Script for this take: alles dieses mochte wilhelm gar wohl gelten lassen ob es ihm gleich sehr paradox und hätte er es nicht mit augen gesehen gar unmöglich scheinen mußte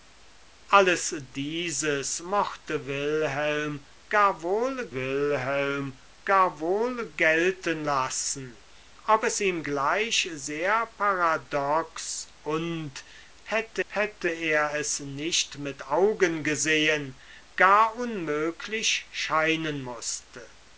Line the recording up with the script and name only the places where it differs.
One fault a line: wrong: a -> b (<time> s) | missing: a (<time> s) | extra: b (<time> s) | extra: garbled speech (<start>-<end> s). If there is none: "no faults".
extra: wilhelm gar wohl (4.9 s)
extra: hätte (13.8 s)